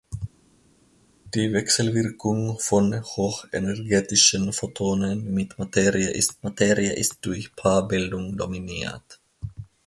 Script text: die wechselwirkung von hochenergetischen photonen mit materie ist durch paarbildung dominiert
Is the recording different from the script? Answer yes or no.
yes